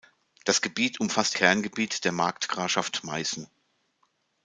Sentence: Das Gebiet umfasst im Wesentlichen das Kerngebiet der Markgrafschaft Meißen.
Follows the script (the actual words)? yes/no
no